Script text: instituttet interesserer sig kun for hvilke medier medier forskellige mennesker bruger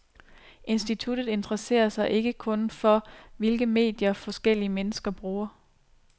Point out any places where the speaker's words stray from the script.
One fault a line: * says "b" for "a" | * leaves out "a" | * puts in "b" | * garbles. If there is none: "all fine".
* puts in "ikke"
* leaves out "medier"